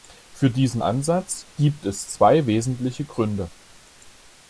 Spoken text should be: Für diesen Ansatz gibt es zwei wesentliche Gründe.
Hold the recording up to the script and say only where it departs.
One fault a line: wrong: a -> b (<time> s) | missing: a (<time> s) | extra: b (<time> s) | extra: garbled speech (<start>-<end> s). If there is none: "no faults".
no faults